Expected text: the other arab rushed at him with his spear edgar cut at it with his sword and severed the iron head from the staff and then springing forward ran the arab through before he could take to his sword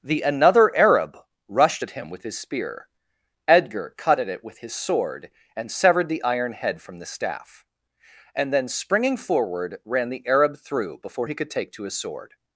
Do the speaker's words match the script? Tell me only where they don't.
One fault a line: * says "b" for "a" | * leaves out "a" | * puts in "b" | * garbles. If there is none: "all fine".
* says "another" for "other"